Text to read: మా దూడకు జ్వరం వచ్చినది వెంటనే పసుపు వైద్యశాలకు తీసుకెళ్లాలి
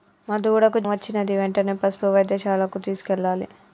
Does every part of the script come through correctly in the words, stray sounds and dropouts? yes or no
no